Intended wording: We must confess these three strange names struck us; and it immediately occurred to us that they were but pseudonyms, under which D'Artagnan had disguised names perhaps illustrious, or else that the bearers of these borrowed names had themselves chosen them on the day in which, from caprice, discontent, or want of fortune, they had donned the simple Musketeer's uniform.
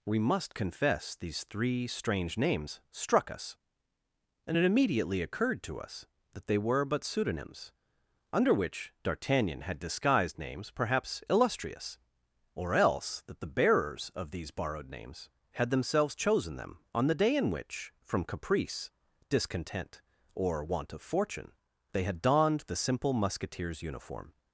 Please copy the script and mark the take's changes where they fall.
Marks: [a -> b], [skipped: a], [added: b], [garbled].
We must confess these three strange names struck us; and it immediately occurred to us that they were but pseudonyms, under which D'Artagnan had disguised names perhaps illustrious, or else that the bearers of these borrowed names had themselves chosen them on the day in which, from caprice, discontent, or want of fortune, they had donned the simple Musketeer's uniform.